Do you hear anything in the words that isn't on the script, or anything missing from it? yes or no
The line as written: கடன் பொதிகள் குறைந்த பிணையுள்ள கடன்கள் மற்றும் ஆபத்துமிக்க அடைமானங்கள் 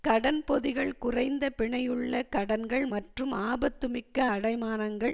no